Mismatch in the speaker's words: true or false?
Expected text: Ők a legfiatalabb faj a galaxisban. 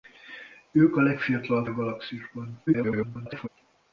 true